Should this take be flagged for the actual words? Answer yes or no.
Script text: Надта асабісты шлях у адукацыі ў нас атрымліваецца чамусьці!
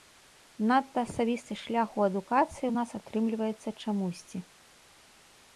no